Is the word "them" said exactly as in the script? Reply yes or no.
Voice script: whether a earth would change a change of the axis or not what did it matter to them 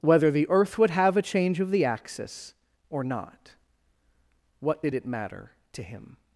no